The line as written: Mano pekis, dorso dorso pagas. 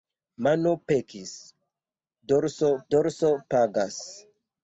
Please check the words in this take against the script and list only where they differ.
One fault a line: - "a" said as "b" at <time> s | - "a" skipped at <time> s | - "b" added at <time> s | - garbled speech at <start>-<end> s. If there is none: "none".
none